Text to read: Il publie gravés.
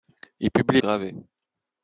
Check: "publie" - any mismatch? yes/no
no